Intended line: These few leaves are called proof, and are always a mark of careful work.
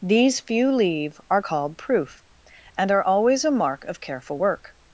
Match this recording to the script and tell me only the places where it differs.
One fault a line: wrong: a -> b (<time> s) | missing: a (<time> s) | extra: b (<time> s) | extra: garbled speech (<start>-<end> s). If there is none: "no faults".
wrong: leaves -> leave (0.7 s)